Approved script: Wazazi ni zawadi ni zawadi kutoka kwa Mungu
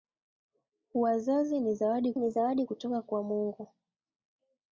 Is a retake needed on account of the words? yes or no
no